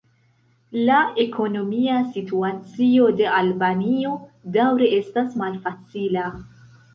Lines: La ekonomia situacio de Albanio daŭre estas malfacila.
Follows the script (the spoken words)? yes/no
yes